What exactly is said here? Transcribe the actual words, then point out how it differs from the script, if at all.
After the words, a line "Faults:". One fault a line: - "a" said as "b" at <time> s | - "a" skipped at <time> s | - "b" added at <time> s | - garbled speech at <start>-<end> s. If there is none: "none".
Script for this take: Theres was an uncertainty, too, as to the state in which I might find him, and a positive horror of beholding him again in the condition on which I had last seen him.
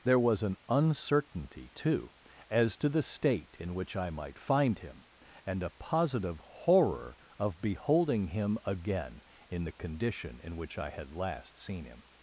There was an uncertainty, too, as to the state in which I might find him, and a positive horror of beholding him again in the condition in which I had last seen him.
Faults:
- "Theres" said as "There" at 0.0 s
- "on" said as "in" at 10.4 s